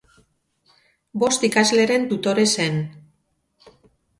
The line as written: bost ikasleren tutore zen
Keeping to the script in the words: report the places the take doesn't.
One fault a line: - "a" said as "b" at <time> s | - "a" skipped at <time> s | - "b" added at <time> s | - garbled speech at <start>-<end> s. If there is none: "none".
none